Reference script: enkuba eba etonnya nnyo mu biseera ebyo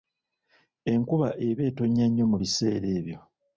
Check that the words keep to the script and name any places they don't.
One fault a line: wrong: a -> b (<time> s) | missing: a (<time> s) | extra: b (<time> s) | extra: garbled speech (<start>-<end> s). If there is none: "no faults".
no faults